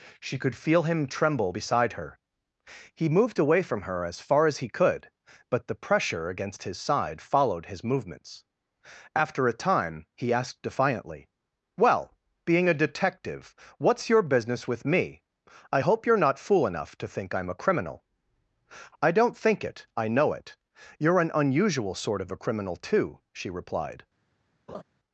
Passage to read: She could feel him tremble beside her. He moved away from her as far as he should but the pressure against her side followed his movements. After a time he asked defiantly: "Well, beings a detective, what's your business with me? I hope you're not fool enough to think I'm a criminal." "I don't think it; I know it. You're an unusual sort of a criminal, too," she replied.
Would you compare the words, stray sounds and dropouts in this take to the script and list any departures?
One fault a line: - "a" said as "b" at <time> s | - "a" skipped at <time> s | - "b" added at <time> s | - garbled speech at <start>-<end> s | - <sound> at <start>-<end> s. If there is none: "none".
- "should" said as "could" at 4.7 s
- "her" said as "his" at 6.6 s
- "beings" said as "being" at 12.5 s
- laugh at 24.7-24.8 s